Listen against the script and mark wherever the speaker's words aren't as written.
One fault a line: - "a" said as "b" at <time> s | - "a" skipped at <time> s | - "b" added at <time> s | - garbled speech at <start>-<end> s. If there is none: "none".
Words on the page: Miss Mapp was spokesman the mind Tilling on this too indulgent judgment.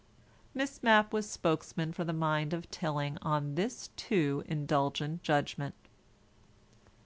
- "for" added at 1.9 s
- "of" added at 2.5 s